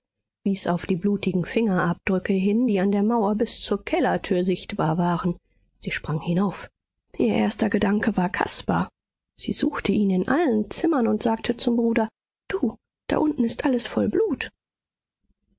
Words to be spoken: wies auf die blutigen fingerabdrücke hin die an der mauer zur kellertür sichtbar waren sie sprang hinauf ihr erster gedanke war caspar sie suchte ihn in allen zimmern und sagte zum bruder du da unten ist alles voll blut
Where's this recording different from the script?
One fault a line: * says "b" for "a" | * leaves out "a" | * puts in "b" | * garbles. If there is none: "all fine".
* puts in "bis"